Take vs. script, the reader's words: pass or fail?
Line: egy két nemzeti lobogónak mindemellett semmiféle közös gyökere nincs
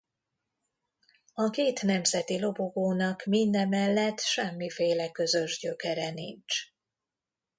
fail